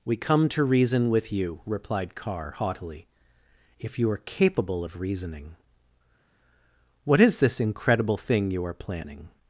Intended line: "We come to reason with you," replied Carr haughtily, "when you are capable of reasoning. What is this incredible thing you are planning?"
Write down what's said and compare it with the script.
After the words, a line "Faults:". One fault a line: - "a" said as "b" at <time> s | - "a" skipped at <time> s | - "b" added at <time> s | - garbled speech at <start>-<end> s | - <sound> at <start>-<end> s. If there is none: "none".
"We come to reason with you," replied Carr haughtily, "if you are capable of reasoning. What is this incredible thing you are planning?"
Faults:
- "when" said as "if" at 3.8 s